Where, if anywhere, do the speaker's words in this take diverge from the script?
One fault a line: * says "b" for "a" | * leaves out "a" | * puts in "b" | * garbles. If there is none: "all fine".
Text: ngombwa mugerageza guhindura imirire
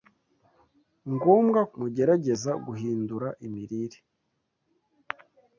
all fine